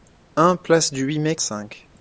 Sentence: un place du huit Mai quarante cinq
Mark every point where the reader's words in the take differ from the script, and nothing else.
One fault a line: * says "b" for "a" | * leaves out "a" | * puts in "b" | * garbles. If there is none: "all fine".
* leaves out "quarante"